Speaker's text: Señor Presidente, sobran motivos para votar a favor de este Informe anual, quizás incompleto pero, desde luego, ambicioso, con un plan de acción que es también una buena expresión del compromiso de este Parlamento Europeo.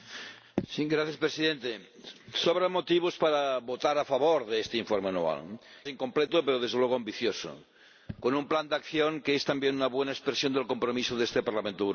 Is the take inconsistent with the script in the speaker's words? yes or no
yes